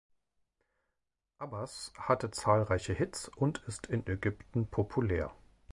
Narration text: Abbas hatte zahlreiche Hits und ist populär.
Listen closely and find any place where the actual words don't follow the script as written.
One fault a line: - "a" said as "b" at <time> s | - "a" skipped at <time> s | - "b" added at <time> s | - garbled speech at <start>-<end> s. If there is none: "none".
- "in Ägypten" added at 3.9 s